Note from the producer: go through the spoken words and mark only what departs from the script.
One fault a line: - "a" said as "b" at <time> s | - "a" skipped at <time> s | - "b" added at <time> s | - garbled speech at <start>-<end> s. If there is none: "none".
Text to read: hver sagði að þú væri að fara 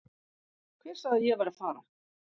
- "þú" said as "ég" at 1.3 s